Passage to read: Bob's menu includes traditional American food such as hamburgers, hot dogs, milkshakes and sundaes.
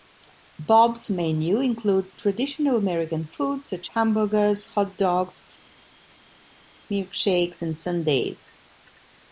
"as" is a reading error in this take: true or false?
true